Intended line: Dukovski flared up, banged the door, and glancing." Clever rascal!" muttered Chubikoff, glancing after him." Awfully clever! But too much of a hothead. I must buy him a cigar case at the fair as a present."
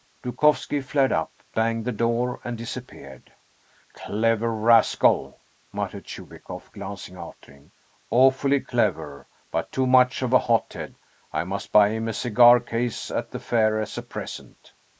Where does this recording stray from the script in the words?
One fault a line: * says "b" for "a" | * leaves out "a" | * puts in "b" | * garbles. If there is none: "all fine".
* says "disappeared" for "glancing"